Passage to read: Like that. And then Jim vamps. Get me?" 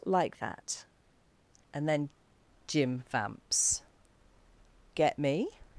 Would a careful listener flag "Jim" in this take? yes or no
no